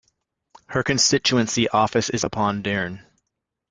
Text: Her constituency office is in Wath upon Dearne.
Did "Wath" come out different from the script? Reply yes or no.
yes